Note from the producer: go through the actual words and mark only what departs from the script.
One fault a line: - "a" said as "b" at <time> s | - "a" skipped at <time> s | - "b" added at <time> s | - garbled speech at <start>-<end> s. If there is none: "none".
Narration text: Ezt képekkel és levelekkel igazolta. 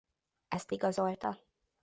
- "képekkel és levelekkel" skipped at 0.7 s